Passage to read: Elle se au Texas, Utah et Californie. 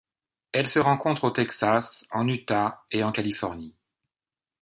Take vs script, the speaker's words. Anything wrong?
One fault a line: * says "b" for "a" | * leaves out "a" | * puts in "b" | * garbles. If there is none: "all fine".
* puts in "rencontre"
* puts in "en"
* puts in "en"